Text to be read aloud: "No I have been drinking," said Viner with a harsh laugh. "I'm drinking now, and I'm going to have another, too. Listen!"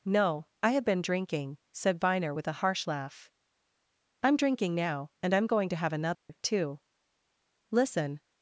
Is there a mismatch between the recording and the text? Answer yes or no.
no